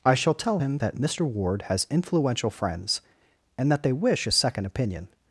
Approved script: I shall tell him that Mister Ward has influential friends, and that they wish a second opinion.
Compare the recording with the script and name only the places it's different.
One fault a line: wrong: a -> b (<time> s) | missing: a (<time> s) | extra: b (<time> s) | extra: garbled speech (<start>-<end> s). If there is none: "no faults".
no faults